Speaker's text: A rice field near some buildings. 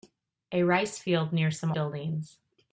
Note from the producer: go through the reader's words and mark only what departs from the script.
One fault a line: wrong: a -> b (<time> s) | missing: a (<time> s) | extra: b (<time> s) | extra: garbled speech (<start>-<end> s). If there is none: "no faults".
no faults